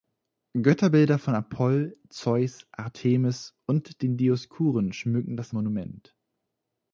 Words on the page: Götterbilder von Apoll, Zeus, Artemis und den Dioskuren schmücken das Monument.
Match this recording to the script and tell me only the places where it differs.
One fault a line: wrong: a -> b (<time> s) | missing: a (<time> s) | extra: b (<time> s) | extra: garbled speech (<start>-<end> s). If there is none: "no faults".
no faults